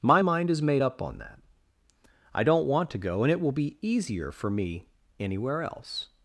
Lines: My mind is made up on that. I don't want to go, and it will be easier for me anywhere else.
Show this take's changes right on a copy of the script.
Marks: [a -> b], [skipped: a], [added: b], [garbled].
My mind is made up on that. I don't want to go, and it will be easier for me anywhere else.